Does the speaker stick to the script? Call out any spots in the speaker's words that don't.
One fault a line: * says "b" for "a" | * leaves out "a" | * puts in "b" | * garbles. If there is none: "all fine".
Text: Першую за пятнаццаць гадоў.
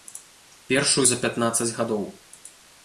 all fine